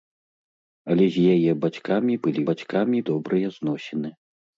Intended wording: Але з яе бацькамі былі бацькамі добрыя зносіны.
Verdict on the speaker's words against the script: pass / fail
pass